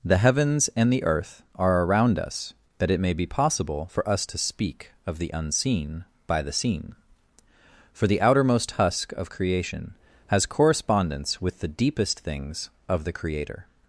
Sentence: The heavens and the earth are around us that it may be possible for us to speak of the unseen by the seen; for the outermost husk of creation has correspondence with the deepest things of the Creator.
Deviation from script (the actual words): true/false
false